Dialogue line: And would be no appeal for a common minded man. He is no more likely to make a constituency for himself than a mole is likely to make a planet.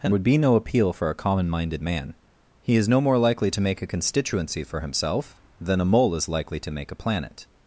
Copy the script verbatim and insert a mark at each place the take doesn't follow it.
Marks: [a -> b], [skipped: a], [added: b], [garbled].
And would be no appeal for a common minded man. He is no more likely to make a constituency for himself than a mole is likely to make a planet.